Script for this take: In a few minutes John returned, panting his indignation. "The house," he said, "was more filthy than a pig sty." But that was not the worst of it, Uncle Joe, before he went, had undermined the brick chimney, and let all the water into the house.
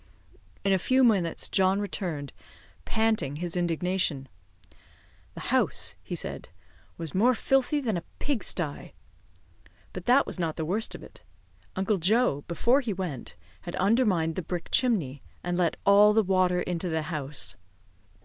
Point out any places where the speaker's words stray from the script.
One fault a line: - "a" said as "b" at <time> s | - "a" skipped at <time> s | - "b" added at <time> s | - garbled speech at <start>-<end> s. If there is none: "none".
none